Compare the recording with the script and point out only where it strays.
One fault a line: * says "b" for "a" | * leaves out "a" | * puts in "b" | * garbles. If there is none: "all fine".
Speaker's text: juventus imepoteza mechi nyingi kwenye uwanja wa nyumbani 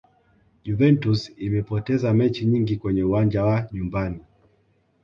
all fine